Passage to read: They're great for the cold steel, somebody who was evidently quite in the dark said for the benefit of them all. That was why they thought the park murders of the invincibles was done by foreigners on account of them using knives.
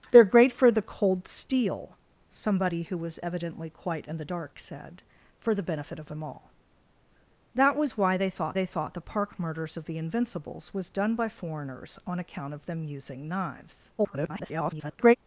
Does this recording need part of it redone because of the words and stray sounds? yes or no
yes